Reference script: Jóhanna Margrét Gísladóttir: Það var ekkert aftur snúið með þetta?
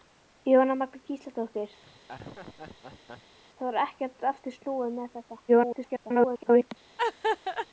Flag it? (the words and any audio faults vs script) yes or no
yes